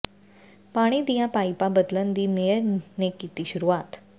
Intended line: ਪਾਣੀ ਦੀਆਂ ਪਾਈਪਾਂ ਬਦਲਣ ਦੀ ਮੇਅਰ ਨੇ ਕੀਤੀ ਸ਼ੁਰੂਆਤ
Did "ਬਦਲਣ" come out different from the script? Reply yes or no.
no